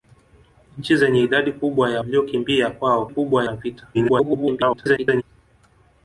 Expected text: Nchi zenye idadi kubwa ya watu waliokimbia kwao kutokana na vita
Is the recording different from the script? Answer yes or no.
yes